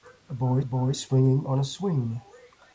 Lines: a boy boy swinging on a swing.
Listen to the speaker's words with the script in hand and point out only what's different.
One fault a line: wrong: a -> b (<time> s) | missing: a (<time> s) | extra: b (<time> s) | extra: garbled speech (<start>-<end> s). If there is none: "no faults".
no faults